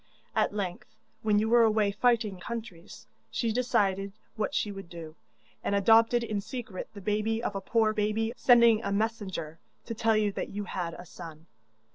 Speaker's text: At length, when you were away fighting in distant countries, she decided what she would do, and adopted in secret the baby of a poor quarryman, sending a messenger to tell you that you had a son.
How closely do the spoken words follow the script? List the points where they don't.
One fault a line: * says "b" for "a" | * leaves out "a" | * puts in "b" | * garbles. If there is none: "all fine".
* leaves out "in distant"
* says "baby" for "quarryman"